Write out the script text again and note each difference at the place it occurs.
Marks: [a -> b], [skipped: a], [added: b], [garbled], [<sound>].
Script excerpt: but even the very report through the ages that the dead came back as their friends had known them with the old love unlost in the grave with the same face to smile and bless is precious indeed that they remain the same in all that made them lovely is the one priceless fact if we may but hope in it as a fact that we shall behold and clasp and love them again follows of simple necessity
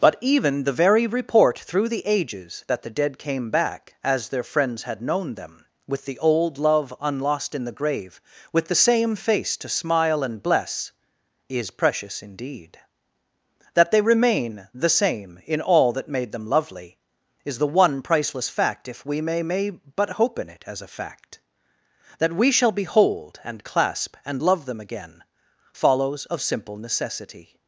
but even the very report through the ages that the dead came back as their friends had known them with the old love unlost in the grave with the same face to smile and bless is precious indeed that they remain the same in all that made them lovely is the one priceless fact if we may [added: may] but hope in it as a fact that we shall behold and clasp and love them again follows of simple necessity